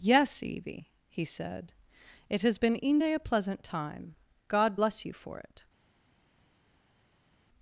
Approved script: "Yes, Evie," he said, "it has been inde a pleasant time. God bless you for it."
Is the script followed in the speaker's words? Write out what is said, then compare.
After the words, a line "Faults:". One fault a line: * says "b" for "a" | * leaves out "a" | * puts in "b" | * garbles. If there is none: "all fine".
"Yes, Evie," he said, "it has been inde a pleasant time. God bless you for it."
Faults:
all fine